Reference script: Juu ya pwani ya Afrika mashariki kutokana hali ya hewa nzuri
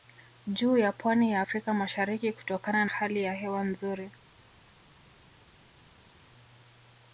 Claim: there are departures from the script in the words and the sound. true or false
false